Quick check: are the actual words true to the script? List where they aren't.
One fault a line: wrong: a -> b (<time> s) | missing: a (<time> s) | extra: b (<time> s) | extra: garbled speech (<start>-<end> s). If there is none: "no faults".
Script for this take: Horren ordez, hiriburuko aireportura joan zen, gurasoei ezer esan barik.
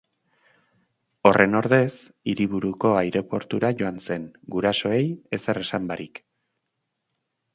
no faults